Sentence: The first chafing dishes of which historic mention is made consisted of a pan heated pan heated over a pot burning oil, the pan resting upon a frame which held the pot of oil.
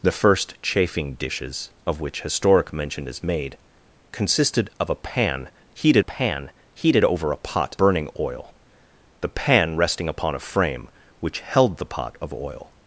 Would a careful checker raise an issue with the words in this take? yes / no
no